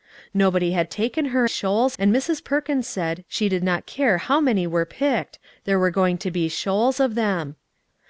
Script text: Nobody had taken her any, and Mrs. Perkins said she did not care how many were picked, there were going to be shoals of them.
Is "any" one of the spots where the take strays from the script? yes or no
yes